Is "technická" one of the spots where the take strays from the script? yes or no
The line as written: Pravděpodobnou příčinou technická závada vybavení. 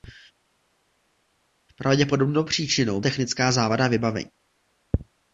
no